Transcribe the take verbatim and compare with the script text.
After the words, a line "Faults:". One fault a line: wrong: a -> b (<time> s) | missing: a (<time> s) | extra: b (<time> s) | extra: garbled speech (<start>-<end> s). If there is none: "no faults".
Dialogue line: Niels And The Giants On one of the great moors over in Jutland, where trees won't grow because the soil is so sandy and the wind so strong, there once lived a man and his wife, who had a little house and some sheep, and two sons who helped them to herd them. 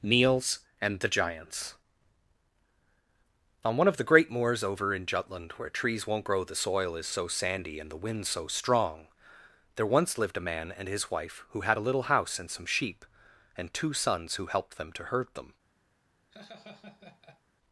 Niels And The Giants On one of the great moors over in Jutland, where trees won't grow the soil is so sandy and the wind so strong, there once lived a man and his wife, who had a little house and some sheep, and two sons who helped them to herd them.
Faults:
missing: because (6.4 s)